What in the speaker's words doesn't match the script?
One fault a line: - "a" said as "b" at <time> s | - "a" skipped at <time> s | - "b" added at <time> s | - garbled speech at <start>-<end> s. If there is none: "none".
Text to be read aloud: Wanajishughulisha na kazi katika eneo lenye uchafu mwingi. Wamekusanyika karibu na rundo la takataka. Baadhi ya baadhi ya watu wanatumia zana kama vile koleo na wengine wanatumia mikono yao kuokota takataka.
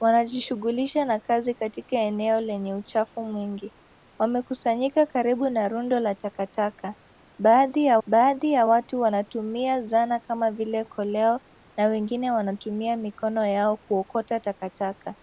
none